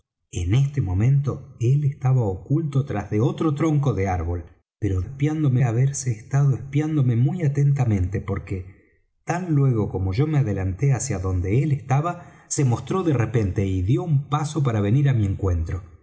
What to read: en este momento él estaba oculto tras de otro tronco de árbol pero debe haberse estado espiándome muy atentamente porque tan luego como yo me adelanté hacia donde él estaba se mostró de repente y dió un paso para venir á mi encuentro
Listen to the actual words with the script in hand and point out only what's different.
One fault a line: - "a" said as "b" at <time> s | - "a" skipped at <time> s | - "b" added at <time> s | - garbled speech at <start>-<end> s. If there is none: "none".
- "debe" said as "espiándome" at 5.0 s